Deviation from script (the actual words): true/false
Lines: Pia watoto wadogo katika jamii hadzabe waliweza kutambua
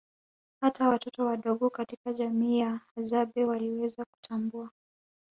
true